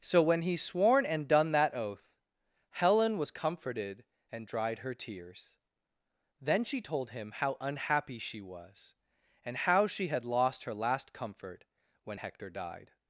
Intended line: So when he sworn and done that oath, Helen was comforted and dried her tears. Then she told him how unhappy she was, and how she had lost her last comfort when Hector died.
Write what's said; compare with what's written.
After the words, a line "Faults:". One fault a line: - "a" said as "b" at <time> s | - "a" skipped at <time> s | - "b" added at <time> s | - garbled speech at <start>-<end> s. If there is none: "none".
So when he sworn and done that oath, Helen was comforted and dried her tears. Then she told him how unhappy she was, and how she had lost her last comfort when Hector died.
Faults:
none